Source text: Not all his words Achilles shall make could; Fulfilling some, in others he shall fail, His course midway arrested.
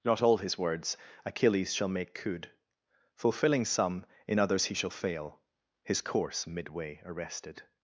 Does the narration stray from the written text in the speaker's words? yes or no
no